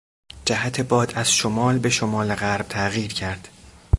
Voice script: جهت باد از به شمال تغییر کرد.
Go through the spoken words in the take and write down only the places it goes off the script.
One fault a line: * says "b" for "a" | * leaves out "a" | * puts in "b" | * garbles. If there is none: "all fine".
* puts in "شمال"
* puts in "غرب"